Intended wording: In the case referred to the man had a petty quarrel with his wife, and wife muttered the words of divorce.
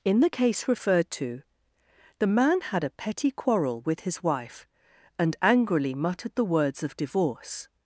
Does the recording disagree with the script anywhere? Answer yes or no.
yes